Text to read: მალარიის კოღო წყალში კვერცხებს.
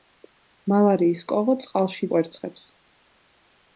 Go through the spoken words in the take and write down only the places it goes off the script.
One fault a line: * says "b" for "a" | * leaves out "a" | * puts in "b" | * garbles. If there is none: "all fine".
all fine